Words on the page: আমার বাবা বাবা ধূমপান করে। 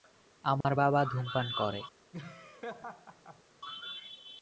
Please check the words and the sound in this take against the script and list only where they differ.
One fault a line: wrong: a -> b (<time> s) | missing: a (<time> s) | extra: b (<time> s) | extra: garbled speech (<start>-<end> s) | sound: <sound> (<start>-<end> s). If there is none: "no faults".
sound: dropout (0.6-0.6 s)
missing: বাবা (1.0 s)
sound: laugh (2.1-3.4 s)